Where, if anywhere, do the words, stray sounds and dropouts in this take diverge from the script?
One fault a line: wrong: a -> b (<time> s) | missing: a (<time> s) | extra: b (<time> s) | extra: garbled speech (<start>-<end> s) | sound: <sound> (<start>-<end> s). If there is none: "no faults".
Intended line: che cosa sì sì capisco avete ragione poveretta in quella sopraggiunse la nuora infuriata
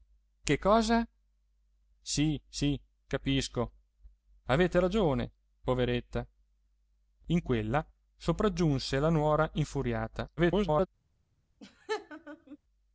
extra: garbled speech (10.4-10.9 s)
sound: laugh (11.6-12.6 s)